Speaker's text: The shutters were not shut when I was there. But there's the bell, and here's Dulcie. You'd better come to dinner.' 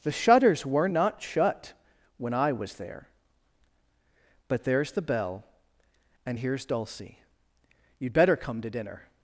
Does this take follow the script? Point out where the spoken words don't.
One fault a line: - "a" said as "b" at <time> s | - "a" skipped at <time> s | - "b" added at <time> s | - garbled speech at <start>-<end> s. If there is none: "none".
none